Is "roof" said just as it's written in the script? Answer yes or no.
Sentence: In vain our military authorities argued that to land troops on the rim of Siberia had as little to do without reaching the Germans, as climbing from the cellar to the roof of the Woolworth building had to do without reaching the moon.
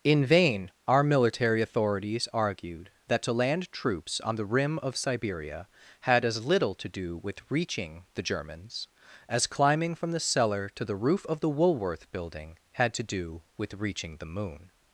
yes